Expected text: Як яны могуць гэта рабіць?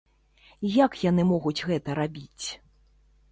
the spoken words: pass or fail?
pass